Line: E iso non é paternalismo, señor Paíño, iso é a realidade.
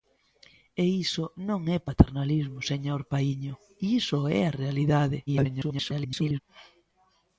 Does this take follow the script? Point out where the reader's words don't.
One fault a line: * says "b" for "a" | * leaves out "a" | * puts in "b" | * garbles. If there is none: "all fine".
* garbles